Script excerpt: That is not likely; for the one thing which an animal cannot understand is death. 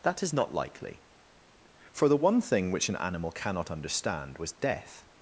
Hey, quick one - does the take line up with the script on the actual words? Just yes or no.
no